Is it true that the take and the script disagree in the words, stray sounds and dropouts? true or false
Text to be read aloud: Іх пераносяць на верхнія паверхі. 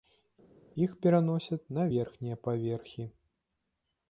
false